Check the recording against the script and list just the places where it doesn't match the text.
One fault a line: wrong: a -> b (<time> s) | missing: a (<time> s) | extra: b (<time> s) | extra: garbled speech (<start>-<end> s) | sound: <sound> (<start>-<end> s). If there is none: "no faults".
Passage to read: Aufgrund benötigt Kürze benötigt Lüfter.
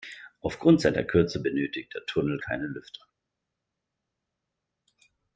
wrong: benötigt -> seiner (0.8 s)
extra: der Tunnel keine (1.9 s)